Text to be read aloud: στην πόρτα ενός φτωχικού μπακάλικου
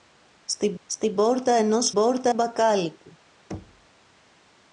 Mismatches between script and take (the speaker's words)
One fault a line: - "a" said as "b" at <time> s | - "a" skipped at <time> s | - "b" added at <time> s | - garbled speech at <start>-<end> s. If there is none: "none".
- "στην" added at 0.8 s
- "φτωχικού" said as "πόρτα" at 1.9 s